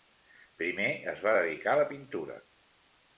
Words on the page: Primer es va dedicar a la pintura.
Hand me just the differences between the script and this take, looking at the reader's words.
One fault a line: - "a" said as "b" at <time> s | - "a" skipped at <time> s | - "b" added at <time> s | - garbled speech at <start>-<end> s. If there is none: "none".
none